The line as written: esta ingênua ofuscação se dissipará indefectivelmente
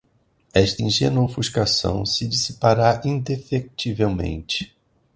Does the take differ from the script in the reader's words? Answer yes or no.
no